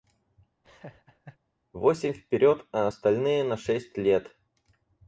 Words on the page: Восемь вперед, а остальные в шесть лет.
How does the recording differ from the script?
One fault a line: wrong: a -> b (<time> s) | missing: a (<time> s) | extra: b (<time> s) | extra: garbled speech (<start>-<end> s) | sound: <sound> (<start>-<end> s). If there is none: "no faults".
sound: laugh (0.6-1.4 s)
wrong: в -> на (3.4 s)